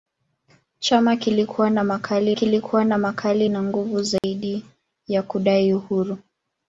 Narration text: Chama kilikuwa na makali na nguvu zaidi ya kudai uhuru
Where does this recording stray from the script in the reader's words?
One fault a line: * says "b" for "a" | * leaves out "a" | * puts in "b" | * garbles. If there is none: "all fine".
* puts in "kilikuwa na makali"